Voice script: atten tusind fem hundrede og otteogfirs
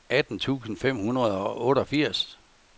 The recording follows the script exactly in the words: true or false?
true